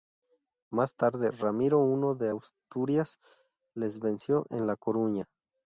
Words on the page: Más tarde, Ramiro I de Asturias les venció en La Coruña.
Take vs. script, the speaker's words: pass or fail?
pass